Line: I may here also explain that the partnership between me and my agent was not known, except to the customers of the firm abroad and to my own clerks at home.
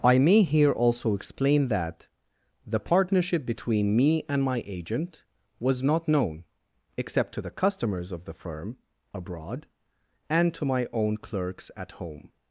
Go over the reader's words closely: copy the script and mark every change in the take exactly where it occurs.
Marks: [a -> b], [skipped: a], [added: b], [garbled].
I may here also explain that the partnership between me and my agent was not known, except to the customers of the firm abroad and to my own clerks at home.